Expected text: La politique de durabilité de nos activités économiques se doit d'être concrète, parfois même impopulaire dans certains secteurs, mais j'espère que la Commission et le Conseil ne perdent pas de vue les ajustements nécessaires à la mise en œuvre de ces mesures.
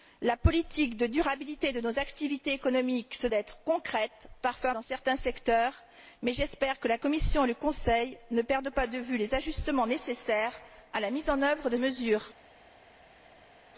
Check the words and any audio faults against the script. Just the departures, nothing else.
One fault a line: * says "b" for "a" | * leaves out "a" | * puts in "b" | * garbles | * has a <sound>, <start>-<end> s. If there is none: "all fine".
* leaves out "doit"
* leaves out "même impopulaire"
* leaves out "ces"